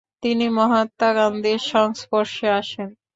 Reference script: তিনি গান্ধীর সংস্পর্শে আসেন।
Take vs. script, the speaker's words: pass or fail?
fail